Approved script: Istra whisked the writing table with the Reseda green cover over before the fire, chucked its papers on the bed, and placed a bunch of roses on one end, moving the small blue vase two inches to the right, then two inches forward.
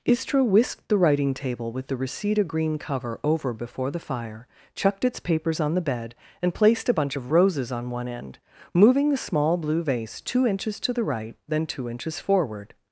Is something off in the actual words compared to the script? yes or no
no